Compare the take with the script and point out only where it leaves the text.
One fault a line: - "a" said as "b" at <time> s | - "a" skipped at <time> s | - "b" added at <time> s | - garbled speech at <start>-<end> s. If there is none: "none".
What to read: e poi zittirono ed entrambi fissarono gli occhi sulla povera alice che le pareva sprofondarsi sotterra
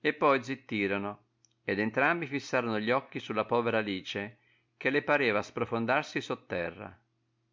none